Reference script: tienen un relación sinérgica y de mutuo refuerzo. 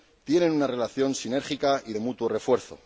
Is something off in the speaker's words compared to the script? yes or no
yes